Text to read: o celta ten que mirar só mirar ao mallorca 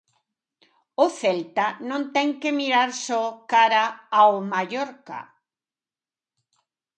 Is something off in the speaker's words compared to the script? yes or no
yes